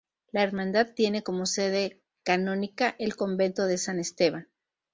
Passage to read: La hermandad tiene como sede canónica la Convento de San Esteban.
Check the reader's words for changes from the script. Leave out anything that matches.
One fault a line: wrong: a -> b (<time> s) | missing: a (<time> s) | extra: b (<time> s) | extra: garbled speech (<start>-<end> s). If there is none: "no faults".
wrong: la -> el (3.0 s)